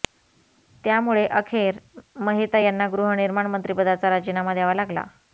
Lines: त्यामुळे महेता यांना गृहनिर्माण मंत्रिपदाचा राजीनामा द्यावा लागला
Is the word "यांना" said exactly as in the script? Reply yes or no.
yes